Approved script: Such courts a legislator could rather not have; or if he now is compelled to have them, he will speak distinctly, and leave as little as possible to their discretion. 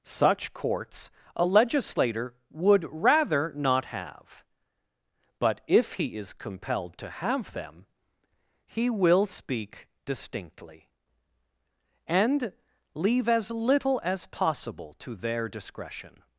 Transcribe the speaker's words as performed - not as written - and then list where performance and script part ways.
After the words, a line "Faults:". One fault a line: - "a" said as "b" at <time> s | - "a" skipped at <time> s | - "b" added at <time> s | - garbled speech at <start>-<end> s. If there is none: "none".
Such courts a legislator would rather not have; but if he is compelled to have them, he will speak distinctly, and leave as little as possible to their discretion.
Faults:
- "could" said as "would" at 2.5 s
- "or" said as "but" at 5.4 s
- "now" skipped at 6.2 s